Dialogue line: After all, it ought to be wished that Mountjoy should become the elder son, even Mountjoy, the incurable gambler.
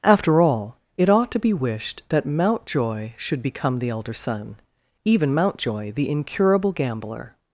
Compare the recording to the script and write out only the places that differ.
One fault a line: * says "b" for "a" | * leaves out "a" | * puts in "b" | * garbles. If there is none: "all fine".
all fine